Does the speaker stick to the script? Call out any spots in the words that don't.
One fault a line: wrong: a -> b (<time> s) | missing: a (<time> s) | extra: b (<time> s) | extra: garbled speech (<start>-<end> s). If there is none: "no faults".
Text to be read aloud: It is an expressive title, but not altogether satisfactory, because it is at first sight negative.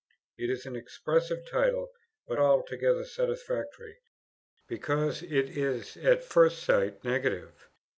missing: not (2.4 s)